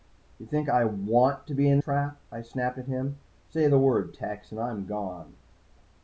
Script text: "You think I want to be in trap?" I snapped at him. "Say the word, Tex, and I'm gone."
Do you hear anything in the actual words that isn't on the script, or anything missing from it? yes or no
no